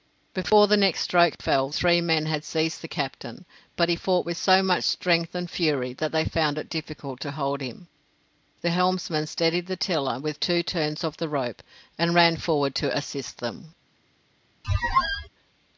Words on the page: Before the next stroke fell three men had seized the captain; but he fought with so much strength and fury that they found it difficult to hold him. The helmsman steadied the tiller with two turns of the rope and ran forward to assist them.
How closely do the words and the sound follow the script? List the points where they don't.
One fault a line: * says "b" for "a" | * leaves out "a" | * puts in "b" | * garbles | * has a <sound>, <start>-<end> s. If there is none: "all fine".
* has a squeak, 14.6-15.3 s